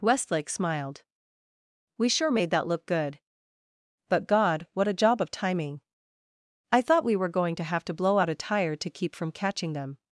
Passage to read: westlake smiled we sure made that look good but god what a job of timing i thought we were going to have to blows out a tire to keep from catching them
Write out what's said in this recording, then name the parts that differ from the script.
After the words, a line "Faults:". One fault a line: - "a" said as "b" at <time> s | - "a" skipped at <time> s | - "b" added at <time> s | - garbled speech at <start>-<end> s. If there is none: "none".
westlake smiled we sure made that look good but god what a job of timing i thought we were going to have to blow out a tire to keep from catching them
Faults:
- "blows" said as "blow" at 7.9 s